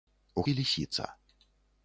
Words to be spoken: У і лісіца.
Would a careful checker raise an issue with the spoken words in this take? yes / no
no